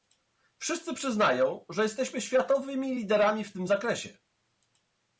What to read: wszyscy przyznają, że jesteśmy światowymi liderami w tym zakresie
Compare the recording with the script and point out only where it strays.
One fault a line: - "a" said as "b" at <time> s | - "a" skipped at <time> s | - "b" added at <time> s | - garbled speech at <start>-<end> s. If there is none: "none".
none